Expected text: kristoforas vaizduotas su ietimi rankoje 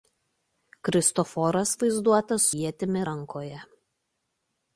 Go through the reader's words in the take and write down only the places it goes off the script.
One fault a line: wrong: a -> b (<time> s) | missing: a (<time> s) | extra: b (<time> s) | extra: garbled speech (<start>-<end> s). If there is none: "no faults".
missing: su (2.5 s)